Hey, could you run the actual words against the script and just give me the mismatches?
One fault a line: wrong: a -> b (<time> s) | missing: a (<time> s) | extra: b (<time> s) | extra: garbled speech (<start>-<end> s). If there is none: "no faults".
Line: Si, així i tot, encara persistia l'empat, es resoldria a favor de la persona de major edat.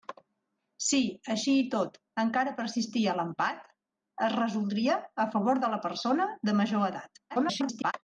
extra: garbled speech (7.3-7.9 s)